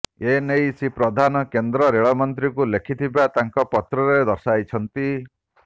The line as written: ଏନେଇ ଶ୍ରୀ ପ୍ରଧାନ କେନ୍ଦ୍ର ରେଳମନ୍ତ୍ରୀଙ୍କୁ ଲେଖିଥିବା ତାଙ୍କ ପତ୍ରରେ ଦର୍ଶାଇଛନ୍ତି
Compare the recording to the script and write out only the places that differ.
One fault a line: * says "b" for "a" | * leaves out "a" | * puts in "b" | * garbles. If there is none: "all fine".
all fine